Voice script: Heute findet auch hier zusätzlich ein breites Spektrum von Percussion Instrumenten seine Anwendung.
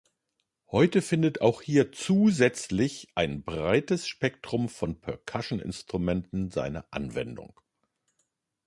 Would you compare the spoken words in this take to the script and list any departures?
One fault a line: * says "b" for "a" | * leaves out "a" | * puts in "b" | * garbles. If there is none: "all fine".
all fine